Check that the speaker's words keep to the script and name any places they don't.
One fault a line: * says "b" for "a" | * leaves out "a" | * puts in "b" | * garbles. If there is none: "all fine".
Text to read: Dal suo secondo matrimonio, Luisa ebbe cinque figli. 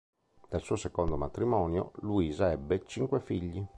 all fine